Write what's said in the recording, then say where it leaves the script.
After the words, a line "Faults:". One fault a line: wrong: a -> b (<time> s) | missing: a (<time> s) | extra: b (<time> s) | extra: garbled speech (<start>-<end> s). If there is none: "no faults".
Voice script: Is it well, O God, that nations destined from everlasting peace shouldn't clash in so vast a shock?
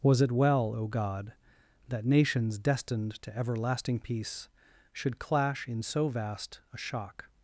Was it well, O God, that nations destined to everlasting peace should clash in so vast a shock?
Faults:
wrong: Is -> Was (0.0 s)
wrong: from -> to (3.2 s)
wrong: shouldn't -> should (4.9 s)